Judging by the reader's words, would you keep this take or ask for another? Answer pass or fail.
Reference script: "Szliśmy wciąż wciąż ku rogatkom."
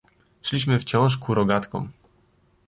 fail